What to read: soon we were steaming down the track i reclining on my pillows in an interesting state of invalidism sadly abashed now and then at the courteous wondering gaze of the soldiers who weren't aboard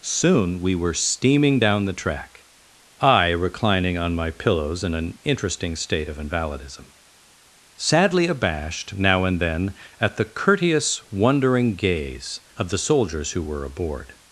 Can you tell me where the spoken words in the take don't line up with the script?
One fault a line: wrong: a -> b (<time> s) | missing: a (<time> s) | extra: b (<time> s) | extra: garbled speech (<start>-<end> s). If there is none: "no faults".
wrong: weren't -> were (13.4 s)